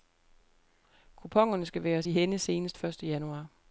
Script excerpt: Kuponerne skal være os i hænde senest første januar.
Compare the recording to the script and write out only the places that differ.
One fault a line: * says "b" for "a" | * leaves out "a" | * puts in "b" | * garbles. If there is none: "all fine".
all fine